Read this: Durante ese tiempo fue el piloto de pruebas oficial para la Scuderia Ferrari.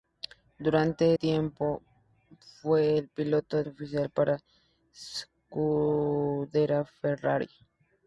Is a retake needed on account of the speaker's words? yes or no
yes